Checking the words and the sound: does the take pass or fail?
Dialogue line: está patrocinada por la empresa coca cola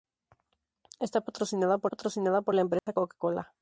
fail